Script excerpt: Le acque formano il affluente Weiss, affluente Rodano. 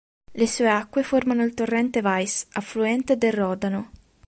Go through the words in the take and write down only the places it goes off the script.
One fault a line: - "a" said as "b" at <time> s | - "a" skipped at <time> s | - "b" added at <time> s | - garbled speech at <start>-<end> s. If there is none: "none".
- "sue" added at 0.5 s
- "affluente" said as "torrente" at 1.5 s
- "del" added at 3.2 s